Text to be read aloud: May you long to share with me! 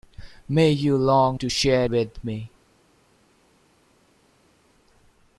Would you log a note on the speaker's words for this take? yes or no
no